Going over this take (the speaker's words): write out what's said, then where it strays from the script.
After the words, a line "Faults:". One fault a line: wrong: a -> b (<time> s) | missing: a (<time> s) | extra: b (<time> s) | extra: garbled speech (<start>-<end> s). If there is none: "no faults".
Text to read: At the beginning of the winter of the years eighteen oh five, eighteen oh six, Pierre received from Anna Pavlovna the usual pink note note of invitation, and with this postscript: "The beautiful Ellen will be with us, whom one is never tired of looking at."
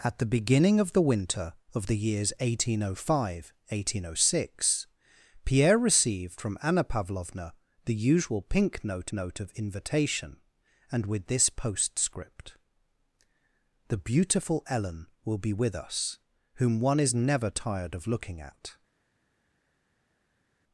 At the beginning of the winter of the years eighteen oh five, eighteen oh six, Pierre received from Anna Pavlovna the usual pink note note of invitation, and with this postscript: "The beautiful Ellen will be with us, whom one is never tired of looking at."
Faults:
no faults